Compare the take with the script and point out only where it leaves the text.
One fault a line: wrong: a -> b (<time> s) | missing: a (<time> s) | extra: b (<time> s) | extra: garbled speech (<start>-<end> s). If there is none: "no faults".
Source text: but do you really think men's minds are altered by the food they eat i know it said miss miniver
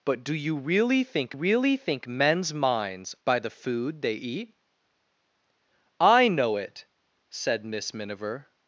extra: really think (1.3 s)
missing: are altered (3.1 s)